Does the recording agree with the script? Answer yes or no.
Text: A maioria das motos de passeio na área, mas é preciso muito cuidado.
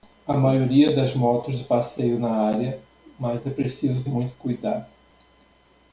yes